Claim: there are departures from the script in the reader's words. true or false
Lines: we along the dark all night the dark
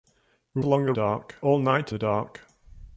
false